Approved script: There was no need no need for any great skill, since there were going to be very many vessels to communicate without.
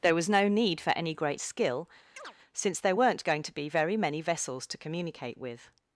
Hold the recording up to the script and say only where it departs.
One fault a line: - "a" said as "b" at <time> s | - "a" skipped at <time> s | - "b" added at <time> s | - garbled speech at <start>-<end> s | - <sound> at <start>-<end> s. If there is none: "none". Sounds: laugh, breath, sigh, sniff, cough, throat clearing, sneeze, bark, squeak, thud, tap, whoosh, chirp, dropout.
- "no need" skipped at 0.8 s
- chirp at 2.2-2.4 s
- "were" said as "weren't" at 2.9 s
- "without" said as "with" at 5.4 s